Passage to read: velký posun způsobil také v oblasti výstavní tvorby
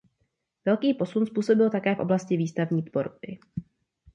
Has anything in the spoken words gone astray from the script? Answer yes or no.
no